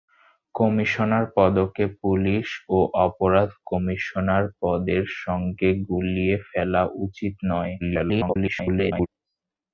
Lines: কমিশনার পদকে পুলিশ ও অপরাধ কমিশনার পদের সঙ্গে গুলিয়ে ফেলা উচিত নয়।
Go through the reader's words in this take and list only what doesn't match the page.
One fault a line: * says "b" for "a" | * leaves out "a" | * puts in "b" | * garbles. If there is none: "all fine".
* garbles